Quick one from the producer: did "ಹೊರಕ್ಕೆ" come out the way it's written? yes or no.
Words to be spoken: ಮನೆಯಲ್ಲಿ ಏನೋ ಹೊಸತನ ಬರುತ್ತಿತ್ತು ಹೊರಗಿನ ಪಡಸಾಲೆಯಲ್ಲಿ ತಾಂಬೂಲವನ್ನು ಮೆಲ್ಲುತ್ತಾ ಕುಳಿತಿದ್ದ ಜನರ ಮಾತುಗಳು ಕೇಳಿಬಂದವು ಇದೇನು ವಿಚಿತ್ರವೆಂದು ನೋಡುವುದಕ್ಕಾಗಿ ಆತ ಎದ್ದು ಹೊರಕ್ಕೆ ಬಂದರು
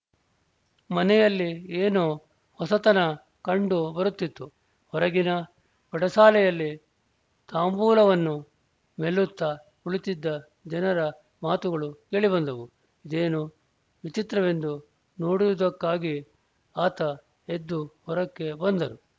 yes